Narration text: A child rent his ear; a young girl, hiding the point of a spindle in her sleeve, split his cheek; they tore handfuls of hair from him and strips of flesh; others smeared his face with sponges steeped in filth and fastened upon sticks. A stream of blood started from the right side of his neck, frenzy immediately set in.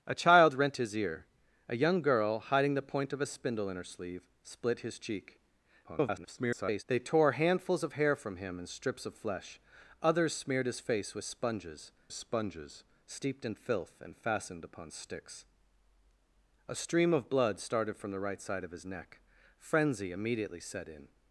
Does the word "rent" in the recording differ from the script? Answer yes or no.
no